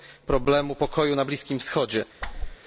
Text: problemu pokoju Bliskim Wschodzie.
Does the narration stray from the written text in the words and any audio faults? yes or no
yes